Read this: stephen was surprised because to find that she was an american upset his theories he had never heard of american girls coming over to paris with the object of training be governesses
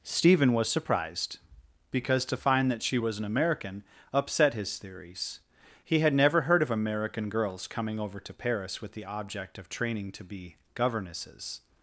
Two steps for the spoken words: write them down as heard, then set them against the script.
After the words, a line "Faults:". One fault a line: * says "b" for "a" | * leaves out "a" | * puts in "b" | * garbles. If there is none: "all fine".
stephen was surprised because to find that she was an american upset his theories he had never heard of american girls coming over to paris with the object of training to be governesses
Faults:
* puts in "to"